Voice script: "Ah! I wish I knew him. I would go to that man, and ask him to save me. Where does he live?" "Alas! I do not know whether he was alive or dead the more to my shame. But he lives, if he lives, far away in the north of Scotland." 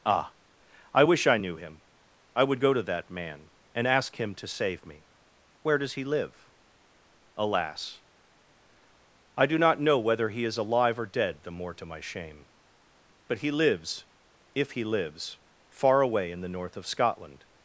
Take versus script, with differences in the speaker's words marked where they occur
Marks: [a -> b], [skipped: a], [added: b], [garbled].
"Ah! I wish I knew him. I would go to that man, and ask him to save me. Where does he live?" "Alas! I do not know whether he [was -> is] alive or dead the more to my shame. But he lives, if he lives, far away in the north of Scotland."